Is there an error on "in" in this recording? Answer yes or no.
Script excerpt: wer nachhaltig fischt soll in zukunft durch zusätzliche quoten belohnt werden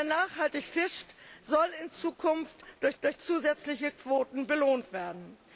no